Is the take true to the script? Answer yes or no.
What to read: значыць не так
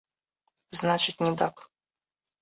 yes